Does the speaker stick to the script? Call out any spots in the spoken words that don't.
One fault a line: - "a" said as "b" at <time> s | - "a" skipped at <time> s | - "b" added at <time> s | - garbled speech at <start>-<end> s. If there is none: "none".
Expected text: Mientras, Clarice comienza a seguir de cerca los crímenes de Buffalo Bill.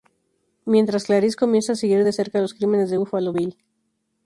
none